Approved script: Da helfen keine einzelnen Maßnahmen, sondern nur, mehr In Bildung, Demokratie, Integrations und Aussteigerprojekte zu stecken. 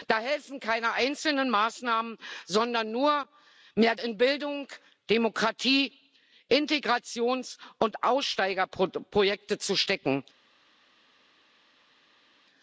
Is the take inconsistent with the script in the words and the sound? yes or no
no